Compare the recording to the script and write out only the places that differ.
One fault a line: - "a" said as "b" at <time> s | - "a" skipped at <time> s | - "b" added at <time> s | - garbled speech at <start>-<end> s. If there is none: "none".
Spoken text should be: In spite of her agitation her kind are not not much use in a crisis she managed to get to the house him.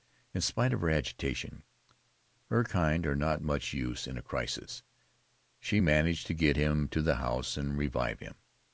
- "not" skipped at 3.4 s
- "him" added at 6.6 s
- "and revive" added at 7.6 s